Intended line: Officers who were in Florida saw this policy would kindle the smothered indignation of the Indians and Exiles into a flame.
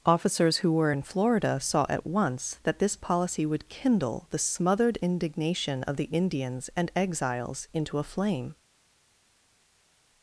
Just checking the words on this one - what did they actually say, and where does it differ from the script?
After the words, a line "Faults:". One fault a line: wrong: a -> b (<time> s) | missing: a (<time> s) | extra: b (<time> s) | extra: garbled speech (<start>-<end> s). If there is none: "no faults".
Officers who were in Florida saw at once that this policy would kindle the smothered indignation of the Indians and Exiles into a flame.
Faults:
extra: at once that (1.9 s)